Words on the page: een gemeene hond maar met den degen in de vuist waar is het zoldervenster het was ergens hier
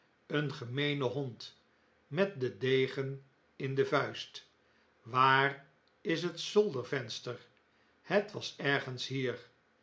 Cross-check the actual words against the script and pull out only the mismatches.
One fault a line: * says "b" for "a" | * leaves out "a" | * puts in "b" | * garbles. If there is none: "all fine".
* leaves out "maar"